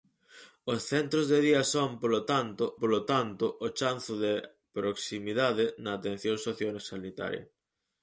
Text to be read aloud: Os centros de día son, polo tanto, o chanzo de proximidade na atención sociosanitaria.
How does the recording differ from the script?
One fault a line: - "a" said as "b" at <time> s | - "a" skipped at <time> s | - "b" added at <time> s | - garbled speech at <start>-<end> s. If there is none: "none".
- "polo tanto" added at 2.8 s